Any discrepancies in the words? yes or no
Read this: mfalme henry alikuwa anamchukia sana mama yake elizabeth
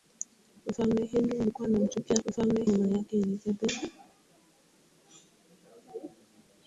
yes